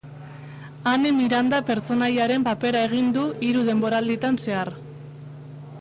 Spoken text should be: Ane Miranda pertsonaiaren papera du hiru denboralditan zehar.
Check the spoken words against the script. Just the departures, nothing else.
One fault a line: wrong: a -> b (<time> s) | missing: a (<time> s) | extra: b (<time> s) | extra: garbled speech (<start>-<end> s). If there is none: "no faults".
extra: egin (2.9 s)